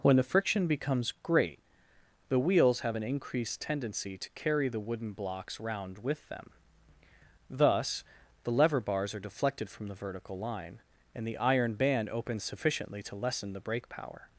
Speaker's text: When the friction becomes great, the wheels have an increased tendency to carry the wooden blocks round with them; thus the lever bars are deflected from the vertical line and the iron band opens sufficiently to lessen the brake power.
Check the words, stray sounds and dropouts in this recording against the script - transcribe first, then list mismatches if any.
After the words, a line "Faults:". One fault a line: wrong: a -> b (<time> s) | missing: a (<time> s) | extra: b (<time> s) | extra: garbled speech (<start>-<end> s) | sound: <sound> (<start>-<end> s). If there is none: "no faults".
When the friction becomes great, the wheels have an increased tendency to carry the wooden blocks round with them; thus the lever bars are deflected from the vertical line and the iron band opens sufficiently to lessen the brake power.
Faults:
no faults